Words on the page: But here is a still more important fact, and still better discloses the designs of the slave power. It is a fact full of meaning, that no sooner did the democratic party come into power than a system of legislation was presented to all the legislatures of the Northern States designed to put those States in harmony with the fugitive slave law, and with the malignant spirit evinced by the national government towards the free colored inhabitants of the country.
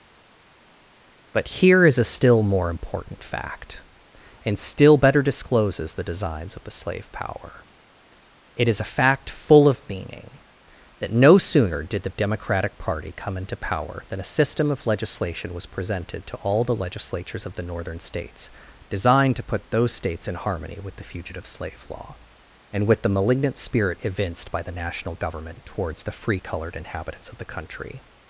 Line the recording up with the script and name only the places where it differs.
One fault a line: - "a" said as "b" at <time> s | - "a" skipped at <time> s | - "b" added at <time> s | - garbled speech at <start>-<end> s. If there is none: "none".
none